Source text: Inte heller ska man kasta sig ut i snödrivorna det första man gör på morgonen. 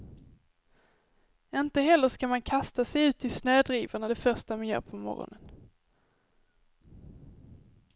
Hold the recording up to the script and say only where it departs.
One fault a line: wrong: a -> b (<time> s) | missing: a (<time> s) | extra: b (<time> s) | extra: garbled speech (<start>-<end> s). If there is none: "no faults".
no faults